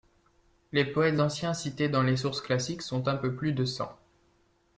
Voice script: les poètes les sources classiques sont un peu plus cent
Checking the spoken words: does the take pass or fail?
fail